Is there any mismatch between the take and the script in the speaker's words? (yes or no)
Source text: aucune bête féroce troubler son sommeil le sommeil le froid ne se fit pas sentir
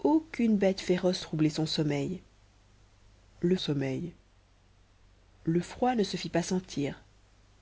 no